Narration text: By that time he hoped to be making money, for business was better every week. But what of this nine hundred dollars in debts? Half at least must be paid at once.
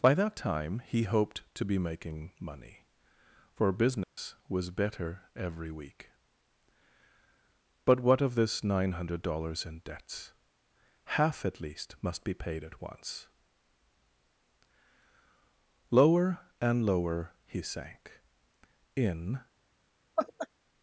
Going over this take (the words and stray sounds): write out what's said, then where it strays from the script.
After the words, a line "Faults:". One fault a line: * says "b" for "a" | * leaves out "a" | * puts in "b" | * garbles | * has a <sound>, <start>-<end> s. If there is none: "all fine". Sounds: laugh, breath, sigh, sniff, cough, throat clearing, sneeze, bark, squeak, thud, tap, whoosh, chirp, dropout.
By that time he hoped to be making money, for business was better every week. But what of this nine hundred dollars in debts? Half at least must be paid at once. Lower and lower he sank in
Faults:
* has a dropout, 4.0-4.2 s
* puts in "Lower and lower he sank in"
* has a laugh, 20.2-20.5 s